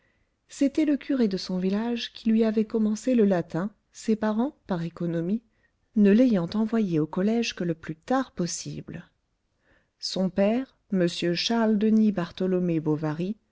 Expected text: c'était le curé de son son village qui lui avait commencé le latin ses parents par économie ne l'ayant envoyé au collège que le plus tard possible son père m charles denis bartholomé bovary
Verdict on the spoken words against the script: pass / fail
fail